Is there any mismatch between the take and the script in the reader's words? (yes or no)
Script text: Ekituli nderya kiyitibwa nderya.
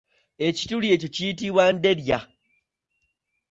yes